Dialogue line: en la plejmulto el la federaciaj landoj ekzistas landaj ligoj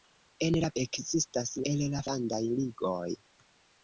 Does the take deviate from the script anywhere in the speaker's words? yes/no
yes